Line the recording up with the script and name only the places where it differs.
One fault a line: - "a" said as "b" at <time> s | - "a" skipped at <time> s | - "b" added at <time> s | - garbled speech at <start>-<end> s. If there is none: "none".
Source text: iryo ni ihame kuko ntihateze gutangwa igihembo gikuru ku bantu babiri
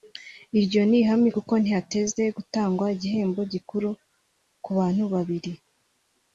none